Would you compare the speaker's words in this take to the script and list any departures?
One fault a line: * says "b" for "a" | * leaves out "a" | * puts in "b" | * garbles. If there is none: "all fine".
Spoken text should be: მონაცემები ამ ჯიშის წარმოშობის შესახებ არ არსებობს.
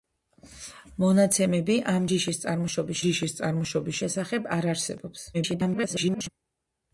* puts in "ჯიშის წარმოშობის"
* garbles